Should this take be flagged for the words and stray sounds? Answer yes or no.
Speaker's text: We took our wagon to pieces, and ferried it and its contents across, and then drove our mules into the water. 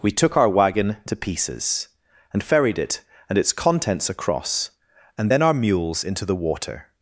yes